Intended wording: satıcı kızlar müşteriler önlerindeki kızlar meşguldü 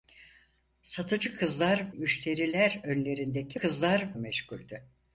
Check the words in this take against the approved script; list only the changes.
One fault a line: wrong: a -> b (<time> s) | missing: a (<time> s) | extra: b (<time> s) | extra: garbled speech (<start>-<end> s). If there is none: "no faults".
no faults